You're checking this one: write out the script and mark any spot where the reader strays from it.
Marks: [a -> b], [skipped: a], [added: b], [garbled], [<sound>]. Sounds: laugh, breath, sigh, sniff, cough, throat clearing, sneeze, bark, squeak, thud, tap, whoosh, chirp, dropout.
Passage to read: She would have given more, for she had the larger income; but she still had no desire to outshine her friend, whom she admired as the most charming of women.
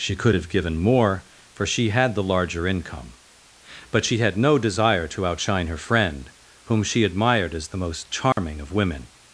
She [would -> could] have given more, for she had the larger income; but she [skipped: still] had no desire to outshine her friend, whom she admired as the most charming [dropout] of women.